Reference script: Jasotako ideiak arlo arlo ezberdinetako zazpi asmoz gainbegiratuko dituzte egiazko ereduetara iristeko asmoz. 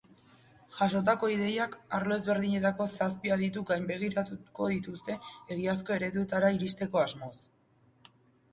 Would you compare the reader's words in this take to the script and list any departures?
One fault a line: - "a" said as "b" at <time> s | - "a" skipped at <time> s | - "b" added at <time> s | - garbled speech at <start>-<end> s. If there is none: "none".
- "arlo" skipped at 2.2 s
- "asmoz" said as "adituk" at 3.4 s